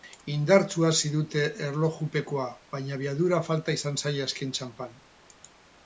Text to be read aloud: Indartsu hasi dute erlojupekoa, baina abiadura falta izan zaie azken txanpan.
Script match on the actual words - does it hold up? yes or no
yes